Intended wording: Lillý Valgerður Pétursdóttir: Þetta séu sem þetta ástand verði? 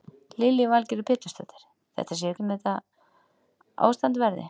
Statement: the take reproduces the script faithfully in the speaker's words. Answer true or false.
true